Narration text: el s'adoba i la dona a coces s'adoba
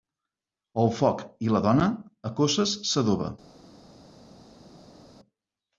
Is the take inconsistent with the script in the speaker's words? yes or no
yes